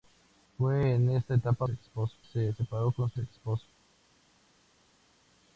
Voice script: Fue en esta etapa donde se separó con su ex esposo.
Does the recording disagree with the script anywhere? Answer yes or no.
yes